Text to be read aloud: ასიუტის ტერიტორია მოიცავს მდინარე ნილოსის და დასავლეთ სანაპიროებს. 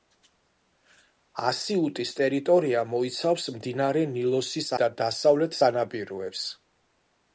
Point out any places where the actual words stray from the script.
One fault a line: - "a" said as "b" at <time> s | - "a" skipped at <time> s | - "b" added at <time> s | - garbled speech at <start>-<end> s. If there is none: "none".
none